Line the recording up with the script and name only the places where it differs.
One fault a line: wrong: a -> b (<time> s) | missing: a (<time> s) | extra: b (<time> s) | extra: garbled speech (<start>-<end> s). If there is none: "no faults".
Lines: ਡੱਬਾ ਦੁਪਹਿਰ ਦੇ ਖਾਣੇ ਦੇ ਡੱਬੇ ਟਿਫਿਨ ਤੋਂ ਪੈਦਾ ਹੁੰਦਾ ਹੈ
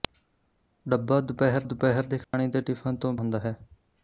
extra: ਦੁਪਹਿਰ (1.6 s)
missing: ਡੱਬੇ (2.6 s)
missing: ਪੈਦਾ (3.1 s)